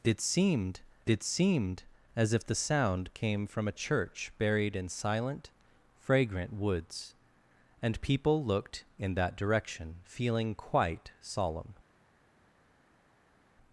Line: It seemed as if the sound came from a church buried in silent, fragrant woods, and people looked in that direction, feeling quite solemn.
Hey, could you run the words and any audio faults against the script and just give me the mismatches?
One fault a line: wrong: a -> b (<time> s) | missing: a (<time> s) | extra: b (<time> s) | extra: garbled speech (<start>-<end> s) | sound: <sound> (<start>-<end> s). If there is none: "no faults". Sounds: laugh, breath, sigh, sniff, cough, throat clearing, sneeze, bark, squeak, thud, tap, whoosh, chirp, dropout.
extra: it seemed (1.1 s)